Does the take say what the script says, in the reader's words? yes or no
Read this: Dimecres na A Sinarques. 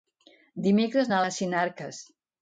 yes